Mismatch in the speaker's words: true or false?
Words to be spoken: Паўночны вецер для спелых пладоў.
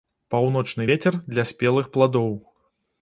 false